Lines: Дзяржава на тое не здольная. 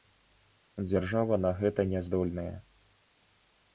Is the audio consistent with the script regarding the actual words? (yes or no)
no